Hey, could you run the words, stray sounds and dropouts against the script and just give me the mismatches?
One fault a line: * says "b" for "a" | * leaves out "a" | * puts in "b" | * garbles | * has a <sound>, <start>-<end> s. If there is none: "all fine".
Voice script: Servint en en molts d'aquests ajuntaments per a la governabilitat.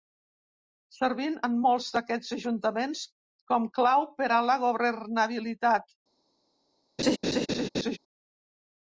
* leaves out "en"
* puts in "com clau"
* has a laugh, 7.0-8.0 s